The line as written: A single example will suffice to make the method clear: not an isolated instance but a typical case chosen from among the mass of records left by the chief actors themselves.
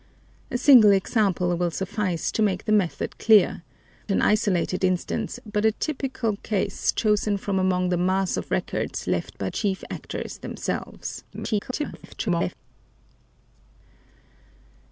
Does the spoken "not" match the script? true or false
false